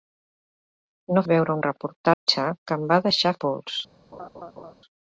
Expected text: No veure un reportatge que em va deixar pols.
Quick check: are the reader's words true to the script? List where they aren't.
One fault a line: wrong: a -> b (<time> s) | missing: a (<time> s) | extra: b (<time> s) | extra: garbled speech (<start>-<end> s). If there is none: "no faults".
no faults